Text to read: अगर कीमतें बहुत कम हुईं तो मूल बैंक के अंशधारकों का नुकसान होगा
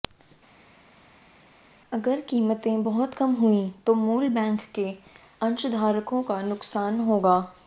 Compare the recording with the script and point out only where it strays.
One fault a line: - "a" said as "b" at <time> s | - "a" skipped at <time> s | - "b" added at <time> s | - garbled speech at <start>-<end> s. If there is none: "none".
none